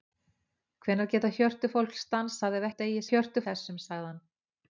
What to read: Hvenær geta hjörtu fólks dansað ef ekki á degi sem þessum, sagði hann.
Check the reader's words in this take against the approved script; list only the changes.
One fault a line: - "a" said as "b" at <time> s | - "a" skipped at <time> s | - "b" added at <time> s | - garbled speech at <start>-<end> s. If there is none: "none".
- "ekki" skipped at 2.7 s
- "sem" said as "hjörtu" at 3.1 s